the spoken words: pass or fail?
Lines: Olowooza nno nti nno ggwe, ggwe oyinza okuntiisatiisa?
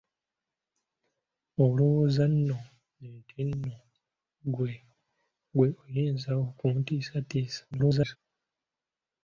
fail